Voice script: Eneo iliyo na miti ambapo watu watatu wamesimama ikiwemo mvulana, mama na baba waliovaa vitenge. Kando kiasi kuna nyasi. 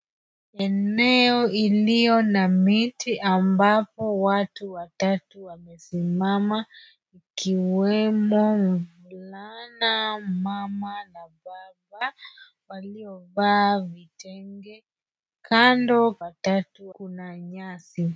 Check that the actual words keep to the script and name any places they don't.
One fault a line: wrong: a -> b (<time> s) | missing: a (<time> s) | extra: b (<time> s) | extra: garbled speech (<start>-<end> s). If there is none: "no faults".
wrong: kiasi -> watatu (16.2 s)